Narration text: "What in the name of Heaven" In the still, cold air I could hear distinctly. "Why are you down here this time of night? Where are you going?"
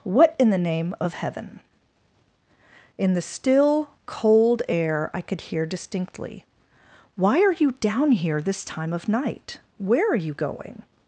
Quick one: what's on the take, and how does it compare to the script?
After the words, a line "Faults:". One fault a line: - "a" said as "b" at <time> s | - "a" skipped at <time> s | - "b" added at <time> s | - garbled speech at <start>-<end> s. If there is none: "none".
"What in the name of Heaven" In the still, cold air I could hear distinctly. "Why are you down here this time of night? Where are you going?"
Faults:
none